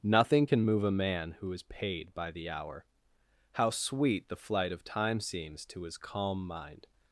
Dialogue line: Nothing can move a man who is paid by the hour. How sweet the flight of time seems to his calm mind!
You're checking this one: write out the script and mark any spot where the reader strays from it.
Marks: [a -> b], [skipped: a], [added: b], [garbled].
Nothing can move a man who is paid by the hour. How sweet the flight of time seems to his calm mind!